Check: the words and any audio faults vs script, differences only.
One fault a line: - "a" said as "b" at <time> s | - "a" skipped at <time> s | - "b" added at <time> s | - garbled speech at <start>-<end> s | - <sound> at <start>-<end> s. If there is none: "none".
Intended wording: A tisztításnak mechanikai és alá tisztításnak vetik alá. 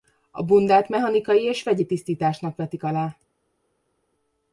- "tisztításnak" said as "bundát" at 0.4 s
- "alá" said as "vegyi" at 1.6 s